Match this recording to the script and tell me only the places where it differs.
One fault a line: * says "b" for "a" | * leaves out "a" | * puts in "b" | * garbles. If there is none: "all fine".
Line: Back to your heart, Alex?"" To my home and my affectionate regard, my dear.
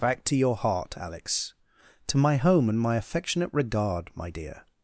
all fine